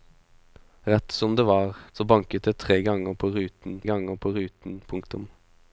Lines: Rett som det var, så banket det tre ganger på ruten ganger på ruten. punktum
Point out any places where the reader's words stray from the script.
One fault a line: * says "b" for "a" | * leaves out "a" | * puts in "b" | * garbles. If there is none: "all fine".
all fine